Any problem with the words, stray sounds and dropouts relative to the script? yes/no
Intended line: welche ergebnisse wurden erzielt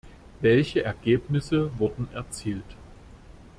no